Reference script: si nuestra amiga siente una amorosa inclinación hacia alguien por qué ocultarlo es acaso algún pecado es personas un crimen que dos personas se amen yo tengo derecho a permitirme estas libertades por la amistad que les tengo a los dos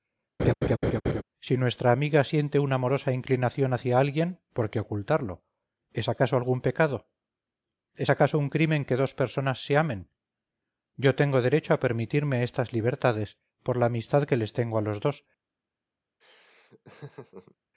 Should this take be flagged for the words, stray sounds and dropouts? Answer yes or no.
yes